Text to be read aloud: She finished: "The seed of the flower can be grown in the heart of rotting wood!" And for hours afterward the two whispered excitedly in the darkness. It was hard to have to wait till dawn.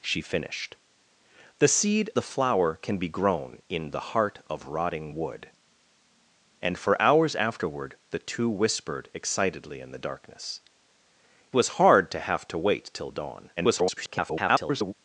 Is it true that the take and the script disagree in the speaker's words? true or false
true